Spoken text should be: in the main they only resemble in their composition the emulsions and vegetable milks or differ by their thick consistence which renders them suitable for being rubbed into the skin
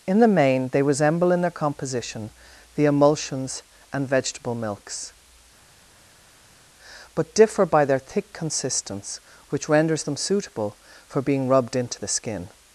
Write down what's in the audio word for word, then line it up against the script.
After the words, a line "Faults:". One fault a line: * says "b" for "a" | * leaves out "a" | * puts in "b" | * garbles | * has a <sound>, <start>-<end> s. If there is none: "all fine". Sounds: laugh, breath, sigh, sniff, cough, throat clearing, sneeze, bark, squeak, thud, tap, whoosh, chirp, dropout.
in the main they resemble in their composition the emulsions and vegetable milks but differ by their thick consistence which renders them suitable for being rubbed into the skin
Faults:
* leaves out "only"
* says "but" for "or"